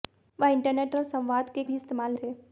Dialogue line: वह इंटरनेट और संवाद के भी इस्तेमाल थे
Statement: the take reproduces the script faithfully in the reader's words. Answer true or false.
true